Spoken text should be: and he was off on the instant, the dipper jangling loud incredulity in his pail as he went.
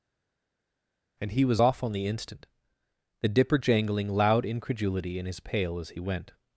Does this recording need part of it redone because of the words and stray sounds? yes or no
no